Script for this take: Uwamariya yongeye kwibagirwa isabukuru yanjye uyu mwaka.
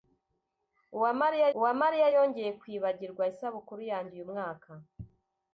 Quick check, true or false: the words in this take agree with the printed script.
false